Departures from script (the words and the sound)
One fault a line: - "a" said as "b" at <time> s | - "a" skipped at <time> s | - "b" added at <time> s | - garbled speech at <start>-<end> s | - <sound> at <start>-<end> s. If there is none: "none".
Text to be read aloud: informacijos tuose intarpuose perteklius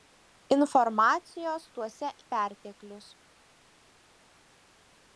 - "intarpuose" skipped at 2.1 s